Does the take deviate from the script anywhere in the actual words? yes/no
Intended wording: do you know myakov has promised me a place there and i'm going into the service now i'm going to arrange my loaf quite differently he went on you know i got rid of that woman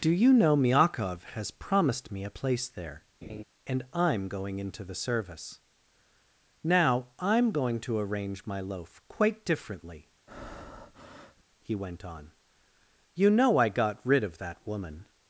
no